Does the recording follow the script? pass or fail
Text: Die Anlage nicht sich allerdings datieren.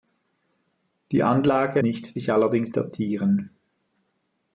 pass